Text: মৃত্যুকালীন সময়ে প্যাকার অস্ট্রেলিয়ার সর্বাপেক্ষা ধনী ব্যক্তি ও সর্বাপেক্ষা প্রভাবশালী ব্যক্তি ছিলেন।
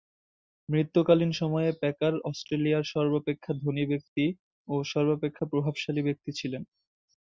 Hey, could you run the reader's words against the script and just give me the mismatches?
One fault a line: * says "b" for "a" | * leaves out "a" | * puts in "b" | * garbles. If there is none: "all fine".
all fine